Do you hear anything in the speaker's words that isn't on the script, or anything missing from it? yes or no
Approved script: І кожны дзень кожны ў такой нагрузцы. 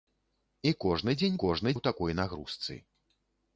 no